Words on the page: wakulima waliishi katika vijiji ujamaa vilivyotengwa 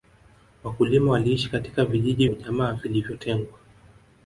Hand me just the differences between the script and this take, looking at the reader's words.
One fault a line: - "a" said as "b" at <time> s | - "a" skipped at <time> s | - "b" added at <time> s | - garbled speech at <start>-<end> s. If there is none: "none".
none